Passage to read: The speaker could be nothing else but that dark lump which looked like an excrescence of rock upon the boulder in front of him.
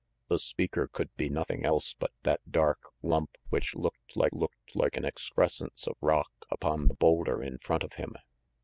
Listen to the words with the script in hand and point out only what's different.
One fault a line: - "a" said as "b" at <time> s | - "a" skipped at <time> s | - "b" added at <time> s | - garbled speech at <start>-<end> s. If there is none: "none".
- "looked like" added at 4.3 s